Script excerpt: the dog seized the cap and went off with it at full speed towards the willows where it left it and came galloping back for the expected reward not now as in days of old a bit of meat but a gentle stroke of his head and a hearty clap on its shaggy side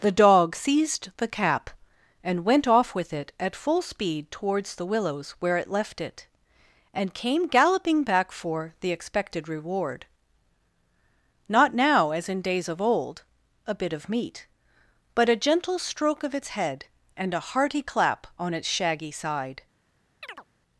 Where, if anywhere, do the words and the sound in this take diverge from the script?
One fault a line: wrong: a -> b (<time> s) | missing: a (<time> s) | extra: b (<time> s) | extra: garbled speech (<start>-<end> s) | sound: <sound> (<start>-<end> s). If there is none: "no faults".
wrong: his -> its (16.3 s)
sound: chirp (20.2-20.5 s)